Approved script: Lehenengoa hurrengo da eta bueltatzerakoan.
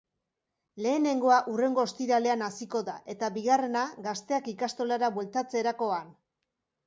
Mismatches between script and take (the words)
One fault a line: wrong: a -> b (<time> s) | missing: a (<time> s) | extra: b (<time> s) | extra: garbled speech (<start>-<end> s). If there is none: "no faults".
extra: ostiralean hasiko (1.9 s)
extra: bigarrena gazteak ikastolara (3.4 s)